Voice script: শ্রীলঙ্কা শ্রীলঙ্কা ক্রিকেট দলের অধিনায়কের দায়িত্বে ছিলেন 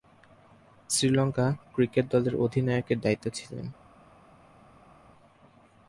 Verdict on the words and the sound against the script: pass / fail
fail